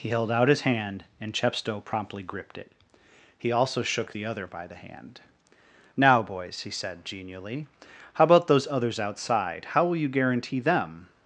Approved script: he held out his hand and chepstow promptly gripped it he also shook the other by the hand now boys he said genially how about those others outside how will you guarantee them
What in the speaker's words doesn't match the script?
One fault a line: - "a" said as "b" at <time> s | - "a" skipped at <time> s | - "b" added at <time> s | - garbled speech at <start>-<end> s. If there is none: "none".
none